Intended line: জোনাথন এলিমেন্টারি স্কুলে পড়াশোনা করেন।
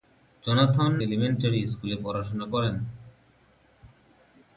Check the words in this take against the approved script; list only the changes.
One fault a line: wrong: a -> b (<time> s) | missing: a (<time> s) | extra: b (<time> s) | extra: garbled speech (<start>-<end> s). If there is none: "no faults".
no faults